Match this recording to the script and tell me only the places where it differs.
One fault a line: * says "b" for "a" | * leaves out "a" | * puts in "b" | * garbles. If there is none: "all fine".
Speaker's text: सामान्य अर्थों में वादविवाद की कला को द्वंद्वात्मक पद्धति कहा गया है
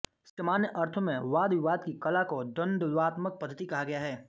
all fine